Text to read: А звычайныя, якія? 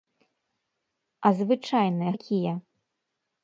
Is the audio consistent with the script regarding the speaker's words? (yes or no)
yes